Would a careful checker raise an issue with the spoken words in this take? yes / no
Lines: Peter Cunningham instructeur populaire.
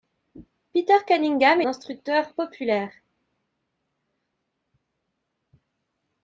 no